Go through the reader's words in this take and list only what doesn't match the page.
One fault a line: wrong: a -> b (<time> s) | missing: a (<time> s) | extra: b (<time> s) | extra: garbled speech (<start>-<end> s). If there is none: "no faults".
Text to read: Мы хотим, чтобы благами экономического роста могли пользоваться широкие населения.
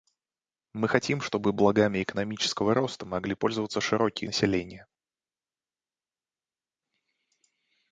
no faults